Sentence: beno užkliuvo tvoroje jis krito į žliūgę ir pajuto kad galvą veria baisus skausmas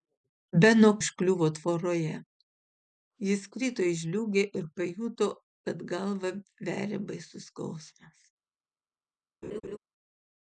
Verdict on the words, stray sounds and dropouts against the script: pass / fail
fail